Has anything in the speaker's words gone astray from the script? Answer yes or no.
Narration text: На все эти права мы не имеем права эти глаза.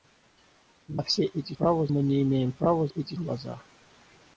no